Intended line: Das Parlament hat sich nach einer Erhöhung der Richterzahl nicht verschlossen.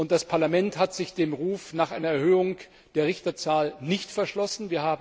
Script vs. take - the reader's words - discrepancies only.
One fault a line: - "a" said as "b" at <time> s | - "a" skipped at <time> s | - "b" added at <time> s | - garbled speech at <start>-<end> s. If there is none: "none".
- "dem Ruf" added at 1.1 s